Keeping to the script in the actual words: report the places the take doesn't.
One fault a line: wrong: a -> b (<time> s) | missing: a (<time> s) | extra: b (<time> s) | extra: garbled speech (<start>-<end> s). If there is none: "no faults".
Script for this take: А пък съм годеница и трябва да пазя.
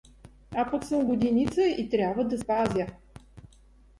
no faults